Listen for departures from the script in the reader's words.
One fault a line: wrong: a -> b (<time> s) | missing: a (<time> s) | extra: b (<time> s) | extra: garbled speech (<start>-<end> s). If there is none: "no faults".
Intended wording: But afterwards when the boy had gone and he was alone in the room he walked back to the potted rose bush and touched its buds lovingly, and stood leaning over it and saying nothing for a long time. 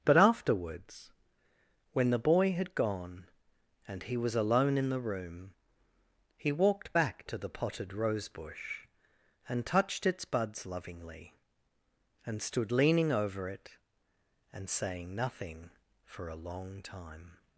no faults